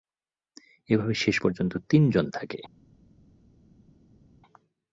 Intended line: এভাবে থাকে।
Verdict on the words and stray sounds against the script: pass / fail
fail